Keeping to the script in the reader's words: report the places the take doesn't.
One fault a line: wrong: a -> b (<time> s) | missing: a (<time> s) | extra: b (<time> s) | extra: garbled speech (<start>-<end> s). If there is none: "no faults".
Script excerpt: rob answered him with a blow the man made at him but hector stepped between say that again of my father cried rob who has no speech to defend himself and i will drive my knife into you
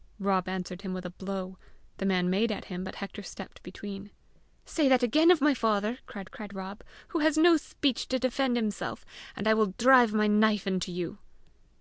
extra: cried (6.3 s)